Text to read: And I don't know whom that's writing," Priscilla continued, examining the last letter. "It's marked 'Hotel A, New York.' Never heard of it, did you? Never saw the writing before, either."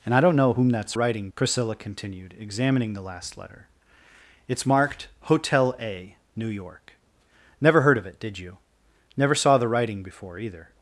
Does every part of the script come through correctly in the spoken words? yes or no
yes